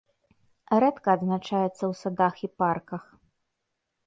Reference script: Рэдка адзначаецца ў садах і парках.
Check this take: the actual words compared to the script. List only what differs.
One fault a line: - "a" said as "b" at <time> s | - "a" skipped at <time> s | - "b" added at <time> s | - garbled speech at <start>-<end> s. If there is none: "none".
none